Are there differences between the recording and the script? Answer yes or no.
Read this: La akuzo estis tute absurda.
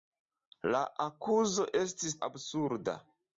yes